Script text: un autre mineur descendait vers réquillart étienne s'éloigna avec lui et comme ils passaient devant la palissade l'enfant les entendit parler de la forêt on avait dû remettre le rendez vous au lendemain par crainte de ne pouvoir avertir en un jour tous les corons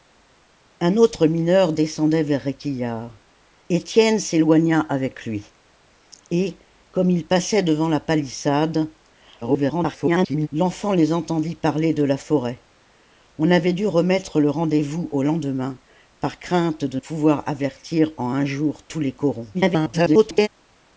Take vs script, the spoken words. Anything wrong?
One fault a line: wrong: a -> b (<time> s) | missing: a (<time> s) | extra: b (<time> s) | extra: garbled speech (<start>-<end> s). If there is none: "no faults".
extra: garbled speech (9.4-10.5 s)
missing: ne (17.0 s)
extra: garbled speech (19.5-20.5 s)